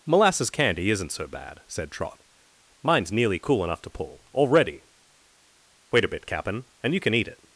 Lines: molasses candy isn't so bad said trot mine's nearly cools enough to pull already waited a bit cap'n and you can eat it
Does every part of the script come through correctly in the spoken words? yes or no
no